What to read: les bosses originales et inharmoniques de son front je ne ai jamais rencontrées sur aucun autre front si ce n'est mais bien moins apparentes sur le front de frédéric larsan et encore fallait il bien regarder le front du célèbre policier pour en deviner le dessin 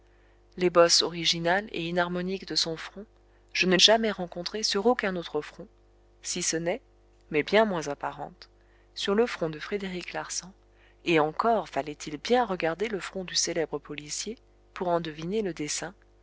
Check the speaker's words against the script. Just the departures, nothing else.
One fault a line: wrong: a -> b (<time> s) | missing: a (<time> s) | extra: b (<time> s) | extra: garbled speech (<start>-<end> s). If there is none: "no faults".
no faults